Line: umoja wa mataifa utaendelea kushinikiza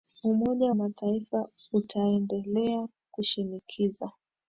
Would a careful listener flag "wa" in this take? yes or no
yes